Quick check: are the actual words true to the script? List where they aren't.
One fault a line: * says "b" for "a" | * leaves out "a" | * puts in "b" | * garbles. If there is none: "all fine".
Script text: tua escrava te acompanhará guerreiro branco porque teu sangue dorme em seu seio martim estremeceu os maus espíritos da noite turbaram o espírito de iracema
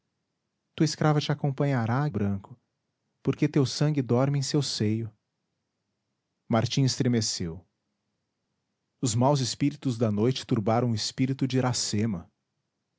* leaves out "guerreiro"